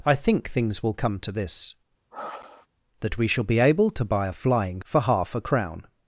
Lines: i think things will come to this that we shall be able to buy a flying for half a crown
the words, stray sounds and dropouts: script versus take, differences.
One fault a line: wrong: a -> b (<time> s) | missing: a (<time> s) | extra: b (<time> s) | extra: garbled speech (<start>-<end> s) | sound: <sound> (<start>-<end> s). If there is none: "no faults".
sound: sigh (2.1-2.7 s)